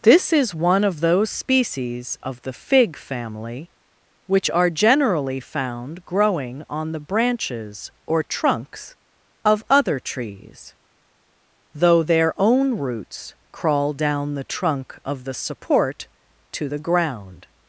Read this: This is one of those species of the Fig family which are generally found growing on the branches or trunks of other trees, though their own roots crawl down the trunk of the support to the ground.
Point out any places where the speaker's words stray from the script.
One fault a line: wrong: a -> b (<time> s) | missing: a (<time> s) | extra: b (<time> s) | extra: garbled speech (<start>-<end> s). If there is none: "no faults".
no faults